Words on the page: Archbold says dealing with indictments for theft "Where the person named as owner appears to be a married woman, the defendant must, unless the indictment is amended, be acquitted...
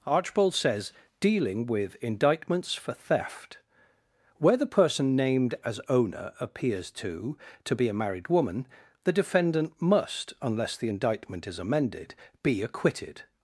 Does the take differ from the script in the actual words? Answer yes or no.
yes